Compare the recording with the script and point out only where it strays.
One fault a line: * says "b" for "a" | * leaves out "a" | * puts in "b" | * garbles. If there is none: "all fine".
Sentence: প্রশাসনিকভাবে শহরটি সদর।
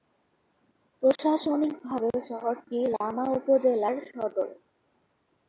* puts in "লামা উপজেলার"